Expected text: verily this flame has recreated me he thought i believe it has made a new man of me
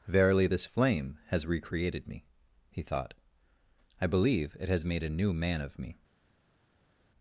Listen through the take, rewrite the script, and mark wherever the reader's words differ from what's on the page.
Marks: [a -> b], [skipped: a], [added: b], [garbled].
verily this flame has recreated me he thought i believe it has made a new man of me